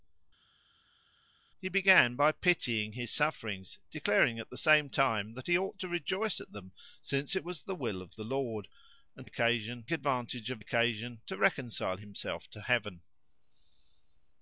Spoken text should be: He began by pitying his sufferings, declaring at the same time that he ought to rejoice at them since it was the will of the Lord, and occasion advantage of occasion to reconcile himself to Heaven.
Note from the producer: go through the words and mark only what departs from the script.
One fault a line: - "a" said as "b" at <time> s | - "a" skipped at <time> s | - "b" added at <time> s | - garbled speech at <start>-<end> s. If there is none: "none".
none